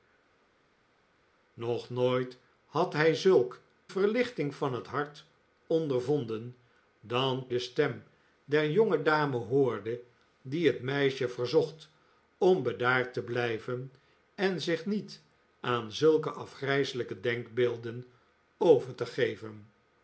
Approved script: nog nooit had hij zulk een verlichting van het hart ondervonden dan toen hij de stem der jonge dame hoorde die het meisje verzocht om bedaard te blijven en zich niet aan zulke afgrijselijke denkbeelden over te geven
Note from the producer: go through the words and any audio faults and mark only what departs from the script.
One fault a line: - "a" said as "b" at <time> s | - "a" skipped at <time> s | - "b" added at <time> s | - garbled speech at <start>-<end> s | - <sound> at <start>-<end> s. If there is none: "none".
- "een" skipped at 3.6 s
- "toen hij" skipped at 7.5 s